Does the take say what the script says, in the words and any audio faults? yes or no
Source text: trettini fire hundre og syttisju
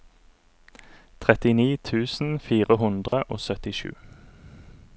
no